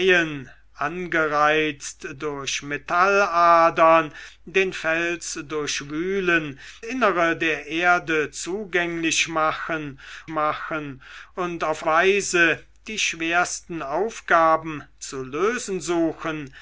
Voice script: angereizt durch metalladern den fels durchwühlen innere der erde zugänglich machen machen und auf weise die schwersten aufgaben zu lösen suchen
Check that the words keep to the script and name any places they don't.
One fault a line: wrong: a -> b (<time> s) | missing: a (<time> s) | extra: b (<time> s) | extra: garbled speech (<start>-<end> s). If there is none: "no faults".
no faults